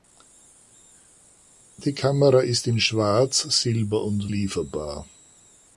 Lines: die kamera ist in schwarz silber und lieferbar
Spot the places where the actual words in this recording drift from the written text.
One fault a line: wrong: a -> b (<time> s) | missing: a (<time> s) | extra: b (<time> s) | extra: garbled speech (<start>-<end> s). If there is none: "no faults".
no faults